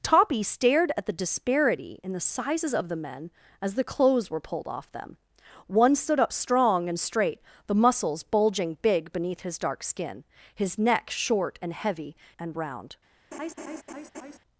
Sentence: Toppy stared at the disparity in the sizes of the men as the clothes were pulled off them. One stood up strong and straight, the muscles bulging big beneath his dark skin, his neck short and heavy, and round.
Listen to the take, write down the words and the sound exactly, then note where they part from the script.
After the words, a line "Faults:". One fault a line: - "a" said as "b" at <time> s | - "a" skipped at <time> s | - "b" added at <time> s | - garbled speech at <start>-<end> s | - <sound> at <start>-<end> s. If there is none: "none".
Toppy stared at the disparity in the sizes of the men as the clothes were pulled off them. One stood up strong and straight, the muscles bulging big beneath his dark skin, his neck short and heavy, and round.
Faults:
- laugh at 13.3-14.4 s